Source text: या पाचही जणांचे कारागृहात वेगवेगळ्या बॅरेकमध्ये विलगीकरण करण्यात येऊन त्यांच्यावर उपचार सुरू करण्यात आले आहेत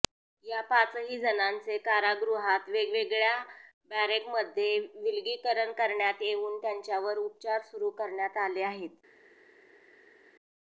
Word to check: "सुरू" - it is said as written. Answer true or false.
true